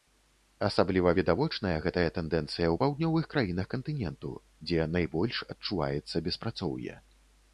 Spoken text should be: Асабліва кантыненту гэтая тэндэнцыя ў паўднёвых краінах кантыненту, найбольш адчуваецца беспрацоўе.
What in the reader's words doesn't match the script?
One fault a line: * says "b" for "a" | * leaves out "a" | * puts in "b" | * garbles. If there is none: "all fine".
* says "відавочная" for "кантыненту"
* puts in "дзе"